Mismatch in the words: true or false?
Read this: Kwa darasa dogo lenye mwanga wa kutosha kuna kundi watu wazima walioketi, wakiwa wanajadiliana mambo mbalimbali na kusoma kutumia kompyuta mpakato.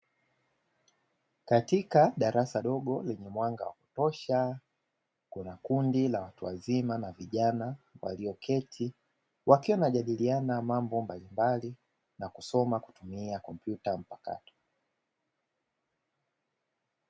true